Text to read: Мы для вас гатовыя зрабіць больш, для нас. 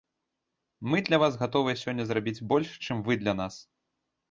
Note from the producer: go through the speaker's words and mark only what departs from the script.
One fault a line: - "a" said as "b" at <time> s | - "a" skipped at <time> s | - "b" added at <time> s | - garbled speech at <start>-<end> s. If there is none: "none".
- "сёння" added at 1.8 s
- "чым вы" added at 2.9 s